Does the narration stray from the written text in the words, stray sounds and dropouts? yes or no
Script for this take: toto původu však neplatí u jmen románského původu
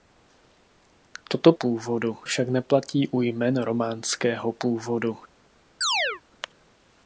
yes